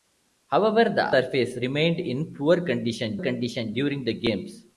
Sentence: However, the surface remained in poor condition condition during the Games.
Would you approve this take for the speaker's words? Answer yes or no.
yes